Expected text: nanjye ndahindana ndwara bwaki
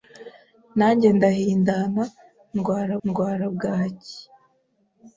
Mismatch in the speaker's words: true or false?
true